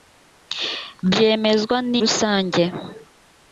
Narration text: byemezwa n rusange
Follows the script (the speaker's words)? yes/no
yes